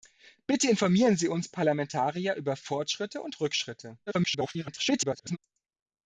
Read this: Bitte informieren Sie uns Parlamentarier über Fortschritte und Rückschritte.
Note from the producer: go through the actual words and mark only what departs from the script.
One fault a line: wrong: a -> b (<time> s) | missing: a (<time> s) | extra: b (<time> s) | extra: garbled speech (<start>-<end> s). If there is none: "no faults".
extra: garbled speech (4.1-5.4 s)